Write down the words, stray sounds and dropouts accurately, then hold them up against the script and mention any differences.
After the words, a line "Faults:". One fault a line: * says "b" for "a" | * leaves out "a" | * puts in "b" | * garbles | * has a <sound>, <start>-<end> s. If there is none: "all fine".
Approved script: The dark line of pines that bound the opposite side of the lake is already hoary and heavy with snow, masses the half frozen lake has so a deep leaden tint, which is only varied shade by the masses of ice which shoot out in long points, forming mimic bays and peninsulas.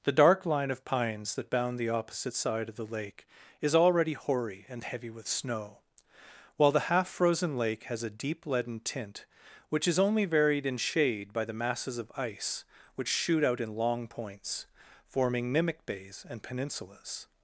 The dark line of pines that bound the opposite side of the lake is already hoary and heavy with snow, while the half frozen lake has a deep leaden tint, which is only varied in shade by the masses of ice which shoot out in long points, forming mimic bays and peninsulas.
Faults:
* says "while" for "masses"
* leaves out "so"
* puts in "in"